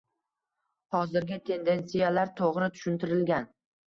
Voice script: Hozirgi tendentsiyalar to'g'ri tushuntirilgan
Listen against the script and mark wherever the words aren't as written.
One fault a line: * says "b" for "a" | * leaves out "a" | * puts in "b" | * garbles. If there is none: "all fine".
all fine